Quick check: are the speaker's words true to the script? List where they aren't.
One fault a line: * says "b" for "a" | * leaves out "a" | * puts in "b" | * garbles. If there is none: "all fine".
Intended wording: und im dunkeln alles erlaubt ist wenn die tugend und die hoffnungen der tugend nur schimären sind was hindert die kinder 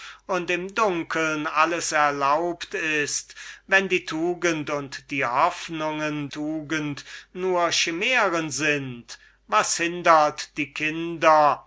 * leaves out "der"